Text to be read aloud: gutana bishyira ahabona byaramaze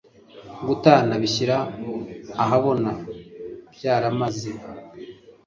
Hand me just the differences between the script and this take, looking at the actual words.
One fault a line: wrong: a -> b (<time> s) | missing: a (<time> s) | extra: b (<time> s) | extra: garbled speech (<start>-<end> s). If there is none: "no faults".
no faults